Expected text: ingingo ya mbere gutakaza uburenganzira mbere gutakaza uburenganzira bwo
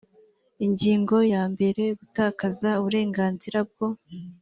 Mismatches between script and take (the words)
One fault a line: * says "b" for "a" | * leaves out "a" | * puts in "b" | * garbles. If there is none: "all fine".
* leaves out "mbere gutakaza uburenganzira"